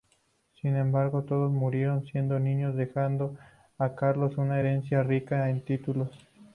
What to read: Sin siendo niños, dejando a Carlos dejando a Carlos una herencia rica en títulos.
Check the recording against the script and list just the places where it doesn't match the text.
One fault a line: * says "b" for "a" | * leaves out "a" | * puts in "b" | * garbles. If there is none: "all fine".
* says "embargo todos murieron siendo niños" for "siendo niños dejando a Carlos"